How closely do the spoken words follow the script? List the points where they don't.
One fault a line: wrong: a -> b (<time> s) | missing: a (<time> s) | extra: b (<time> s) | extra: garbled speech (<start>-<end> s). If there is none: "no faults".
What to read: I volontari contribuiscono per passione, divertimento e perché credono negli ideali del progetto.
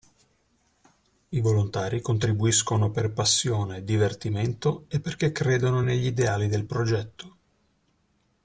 no faults